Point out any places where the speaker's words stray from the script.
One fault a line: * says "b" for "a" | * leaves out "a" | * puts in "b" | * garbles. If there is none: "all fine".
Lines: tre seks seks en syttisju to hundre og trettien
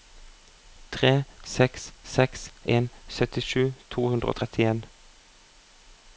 all fine